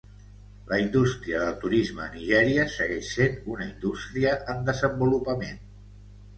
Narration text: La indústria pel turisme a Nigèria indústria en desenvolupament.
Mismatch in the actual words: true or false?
true